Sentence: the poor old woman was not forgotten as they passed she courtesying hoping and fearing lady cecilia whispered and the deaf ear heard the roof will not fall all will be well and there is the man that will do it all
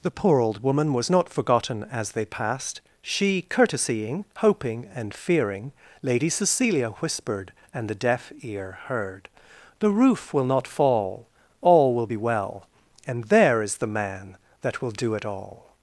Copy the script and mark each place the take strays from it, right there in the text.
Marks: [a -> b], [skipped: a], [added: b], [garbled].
the poor old woman was not forgotten as they passed she courtesying hoping and fearing lady cecilia whispered and the deaf ear heard the roof will not fall all will be well and there is the man that will do it all